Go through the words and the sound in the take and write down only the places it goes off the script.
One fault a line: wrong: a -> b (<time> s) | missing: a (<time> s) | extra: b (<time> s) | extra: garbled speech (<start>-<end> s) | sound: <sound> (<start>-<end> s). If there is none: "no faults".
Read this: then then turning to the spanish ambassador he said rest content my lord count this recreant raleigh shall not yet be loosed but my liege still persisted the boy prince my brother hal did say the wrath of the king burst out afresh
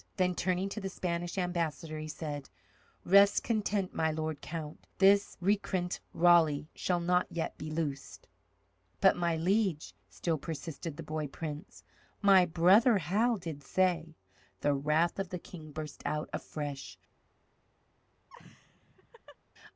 missing: then (0.3 s)
sound: laugh (18.3-19.4 s)